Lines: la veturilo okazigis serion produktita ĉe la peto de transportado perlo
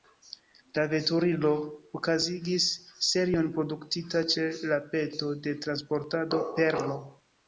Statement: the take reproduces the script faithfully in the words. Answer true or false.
true